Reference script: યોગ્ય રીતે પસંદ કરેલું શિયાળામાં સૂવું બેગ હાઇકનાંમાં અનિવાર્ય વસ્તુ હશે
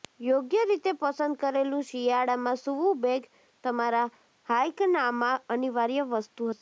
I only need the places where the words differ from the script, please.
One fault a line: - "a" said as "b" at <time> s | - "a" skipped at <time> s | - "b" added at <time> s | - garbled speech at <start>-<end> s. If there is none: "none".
- "તમારા" added at 3.6 s